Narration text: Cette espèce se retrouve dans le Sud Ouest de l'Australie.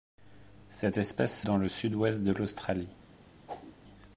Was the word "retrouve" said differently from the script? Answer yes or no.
yes